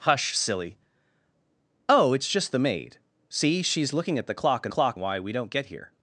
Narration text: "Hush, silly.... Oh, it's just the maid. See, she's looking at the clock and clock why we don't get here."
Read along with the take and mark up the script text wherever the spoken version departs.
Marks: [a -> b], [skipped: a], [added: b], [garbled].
"Hush, silly.... Oh, it's just the maid. See, she's looking at the clock and clock why we don't get here."